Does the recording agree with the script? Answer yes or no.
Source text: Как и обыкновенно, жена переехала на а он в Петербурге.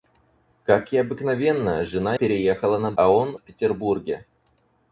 yes